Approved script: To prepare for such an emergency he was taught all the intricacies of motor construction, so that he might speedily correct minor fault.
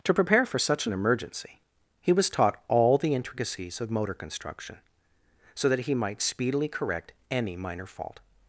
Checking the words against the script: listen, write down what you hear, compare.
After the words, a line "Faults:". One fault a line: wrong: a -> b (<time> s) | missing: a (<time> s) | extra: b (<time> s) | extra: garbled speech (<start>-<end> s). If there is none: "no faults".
To prepare for such an emergency he was taught all the intricacies of motor construction, so that he might speedily correct any minor fault.
Faults:
extra: any (7.3 s)